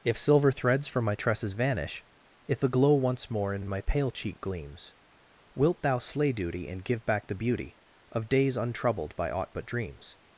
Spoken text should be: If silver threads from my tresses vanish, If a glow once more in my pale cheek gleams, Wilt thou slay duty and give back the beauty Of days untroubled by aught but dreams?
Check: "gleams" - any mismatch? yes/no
no